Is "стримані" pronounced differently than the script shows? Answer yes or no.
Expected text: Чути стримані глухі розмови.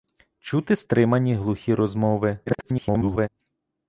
no